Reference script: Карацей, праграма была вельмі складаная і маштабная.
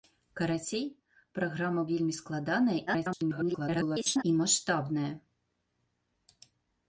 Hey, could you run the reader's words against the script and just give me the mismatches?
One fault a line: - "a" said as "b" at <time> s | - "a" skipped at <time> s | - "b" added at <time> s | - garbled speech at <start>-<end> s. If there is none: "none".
- "была" skipped at 1.8 s
- garbled speech at 2.9-4.2 s